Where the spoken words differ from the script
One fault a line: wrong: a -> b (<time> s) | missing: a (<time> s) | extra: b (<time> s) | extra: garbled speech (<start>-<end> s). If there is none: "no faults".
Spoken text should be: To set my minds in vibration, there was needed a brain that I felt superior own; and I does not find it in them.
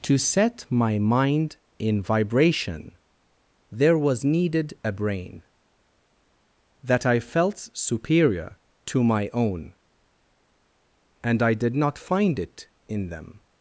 wrong: minds -> mind (1.0 s)
extra: to my (8.9 s)
wrong: does -> did (11.5 s)